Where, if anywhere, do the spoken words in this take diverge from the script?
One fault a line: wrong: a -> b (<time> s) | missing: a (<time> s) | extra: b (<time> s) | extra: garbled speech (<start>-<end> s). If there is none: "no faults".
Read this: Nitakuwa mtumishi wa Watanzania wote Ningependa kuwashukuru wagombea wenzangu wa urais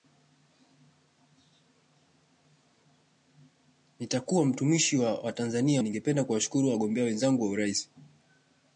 missing: wote (5.8 s)